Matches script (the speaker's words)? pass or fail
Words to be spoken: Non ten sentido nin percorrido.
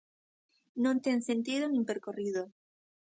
pass